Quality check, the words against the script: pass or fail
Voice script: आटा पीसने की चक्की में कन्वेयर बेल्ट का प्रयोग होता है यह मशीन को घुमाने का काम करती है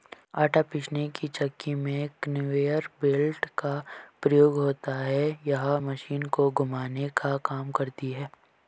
pass